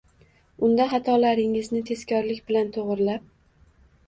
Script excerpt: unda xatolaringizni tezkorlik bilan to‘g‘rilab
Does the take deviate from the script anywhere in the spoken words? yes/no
no